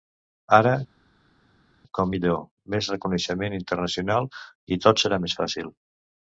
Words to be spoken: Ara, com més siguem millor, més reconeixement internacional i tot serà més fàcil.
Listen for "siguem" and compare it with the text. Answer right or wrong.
wrong